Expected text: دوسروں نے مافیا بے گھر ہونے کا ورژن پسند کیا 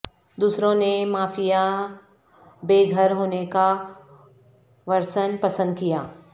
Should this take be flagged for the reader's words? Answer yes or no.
no